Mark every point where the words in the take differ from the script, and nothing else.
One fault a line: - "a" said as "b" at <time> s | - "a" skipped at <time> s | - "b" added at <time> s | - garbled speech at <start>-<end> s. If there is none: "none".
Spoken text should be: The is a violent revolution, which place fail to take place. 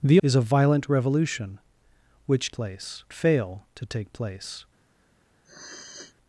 none